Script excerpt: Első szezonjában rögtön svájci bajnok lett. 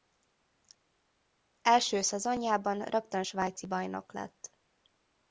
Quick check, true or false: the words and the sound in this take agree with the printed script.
true